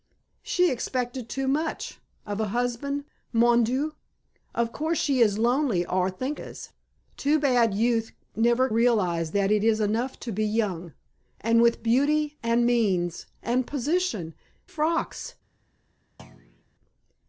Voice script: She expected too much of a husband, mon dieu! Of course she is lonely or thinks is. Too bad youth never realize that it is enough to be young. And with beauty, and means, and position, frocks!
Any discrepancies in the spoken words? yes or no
no